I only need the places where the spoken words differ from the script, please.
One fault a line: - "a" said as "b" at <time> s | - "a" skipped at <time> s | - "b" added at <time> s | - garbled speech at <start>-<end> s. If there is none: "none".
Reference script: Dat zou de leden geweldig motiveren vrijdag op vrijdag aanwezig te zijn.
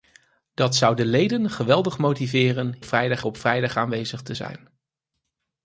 none